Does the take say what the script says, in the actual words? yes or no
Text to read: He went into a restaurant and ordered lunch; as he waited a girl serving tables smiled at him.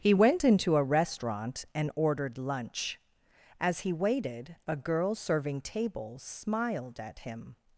yes